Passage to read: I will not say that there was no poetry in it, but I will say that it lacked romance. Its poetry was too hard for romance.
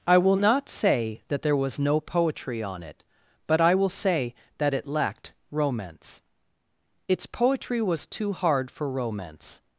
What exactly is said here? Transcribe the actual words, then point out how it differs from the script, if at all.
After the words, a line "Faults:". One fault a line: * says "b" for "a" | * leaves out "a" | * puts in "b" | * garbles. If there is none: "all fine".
I will not say that there was no poetry on it, but I will say that it lacked romance. Its poetry was too hard for romance.
Faults:
* says "on" for "in"